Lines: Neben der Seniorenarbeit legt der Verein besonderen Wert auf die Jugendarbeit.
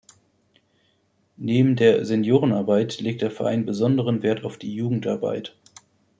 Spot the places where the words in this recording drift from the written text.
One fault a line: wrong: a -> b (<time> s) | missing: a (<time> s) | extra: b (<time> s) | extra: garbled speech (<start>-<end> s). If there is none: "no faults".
no faults